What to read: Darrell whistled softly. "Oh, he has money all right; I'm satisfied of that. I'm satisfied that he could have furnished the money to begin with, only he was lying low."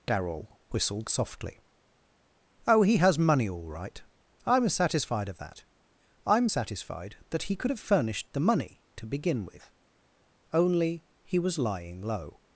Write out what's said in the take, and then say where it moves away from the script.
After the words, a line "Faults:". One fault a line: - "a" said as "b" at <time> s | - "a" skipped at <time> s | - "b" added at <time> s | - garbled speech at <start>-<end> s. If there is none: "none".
Darrell whistled softly. "Oh, he has money all right; I'm satisfied of that. I'm satisfied that he could have furnished the money to begin with, only he was lying low."
Faults:
none